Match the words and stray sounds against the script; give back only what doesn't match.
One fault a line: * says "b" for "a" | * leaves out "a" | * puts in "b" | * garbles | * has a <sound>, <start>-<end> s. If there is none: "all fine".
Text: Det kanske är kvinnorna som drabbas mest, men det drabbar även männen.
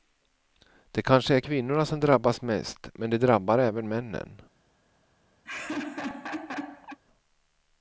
* has a laugh, 5.4-7.0 s